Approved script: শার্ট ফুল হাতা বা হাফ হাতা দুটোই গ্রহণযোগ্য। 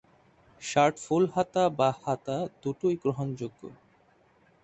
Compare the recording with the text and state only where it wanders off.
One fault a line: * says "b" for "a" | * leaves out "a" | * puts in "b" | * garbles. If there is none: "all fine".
* leaves out "হাফ"